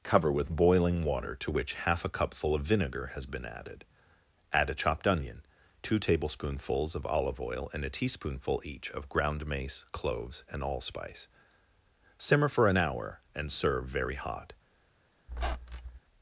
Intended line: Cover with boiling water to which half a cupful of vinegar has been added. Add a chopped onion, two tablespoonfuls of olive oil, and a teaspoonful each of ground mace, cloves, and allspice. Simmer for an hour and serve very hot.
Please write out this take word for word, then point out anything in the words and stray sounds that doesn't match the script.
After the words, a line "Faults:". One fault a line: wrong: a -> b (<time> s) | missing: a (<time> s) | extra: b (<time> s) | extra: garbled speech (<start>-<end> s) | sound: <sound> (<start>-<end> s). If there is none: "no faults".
Cover with boiling water to which half a cupful of vinegar has been added. Add a chopped onion, two tablespoonfuls of olive oil, and a teaspoonful each of ground mace, cloves, and allspice. Simmer for an hour and serve very hot.
Faults:
sound: squeak (15.3-16.0 s)